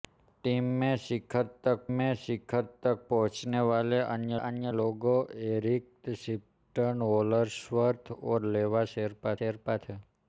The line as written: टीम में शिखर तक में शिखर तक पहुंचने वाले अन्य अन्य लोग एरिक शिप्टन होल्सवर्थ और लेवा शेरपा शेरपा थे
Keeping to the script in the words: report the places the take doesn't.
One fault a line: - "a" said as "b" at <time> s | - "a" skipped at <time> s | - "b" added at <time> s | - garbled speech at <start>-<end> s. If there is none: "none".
none